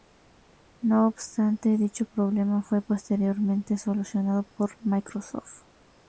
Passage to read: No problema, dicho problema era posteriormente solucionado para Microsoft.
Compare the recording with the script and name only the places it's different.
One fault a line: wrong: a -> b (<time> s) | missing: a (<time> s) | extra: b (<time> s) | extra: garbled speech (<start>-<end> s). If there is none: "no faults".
wrong: problema -> obstante (1.1 s)
wrong: era -> fue (2.6 s)
wrong: para -> por (4.6 s)